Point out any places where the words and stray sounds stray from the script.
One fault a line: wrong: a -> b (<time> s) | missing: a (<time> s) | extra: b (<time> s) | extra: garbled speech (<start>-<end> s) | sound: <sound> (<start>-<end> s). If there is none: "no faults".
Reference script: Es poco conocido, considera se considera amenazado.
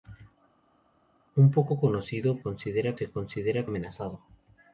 no faults